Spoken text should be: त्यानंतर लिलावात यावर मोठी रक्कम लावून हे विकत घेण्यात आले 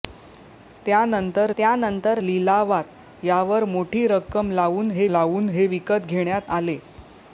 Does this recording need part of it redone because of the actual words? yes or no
yes